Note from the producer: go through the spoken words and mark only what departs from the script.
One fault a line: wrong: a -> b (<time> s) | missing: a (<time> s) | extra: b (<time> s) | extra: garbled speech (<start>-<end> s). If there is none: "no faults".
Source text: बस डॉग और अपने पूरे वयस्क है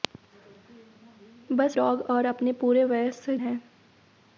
no faults